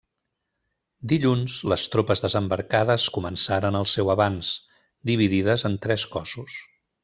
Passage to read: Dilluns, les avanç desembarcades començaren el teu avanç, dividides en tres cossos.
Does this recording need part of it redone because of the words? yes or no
yes